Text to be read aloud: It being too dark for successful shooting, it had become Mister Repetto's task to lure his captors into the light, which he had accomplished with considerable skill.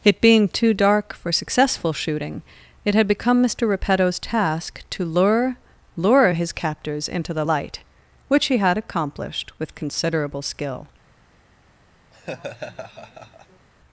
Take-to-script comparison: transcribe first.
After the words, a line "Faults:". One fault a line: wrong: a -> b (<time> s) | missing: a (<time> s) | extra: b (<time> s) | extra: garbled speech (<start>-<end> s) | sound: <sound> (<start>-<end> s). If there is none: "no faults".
It being too dark for successful shooting, it had become Mister Repetto's task to lure lure his captors into the light, which he had accomplished with considerable skill.
Faults:
extra: lure (6.0 s)
sound: laugh (12.1-13.7 s)